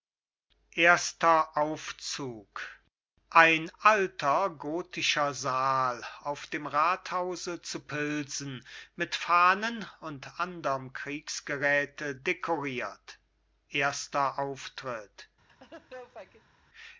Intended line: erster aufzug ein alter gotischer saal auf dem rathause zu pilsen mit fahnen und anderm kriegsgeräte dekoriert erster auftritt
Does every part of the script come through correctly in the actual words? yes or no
yes